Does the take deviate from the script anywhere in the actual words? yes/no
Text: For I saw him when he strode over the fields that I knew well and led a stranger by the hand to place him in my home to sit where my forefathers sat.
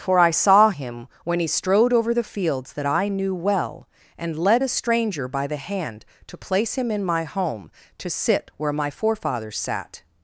no